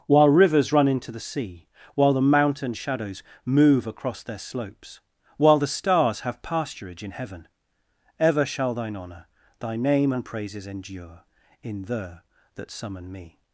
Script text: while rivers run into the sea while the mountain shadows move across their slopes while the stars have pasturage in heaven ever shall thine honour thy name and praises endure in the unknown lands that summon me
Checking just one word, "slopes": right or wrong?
right